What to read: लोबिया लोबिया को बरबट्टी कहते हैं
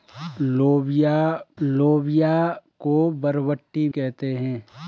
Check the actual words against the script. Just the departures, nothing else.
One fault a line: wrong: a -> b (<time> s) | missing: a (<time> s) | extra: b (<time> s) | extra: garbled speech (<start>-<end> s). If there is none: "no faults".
no faults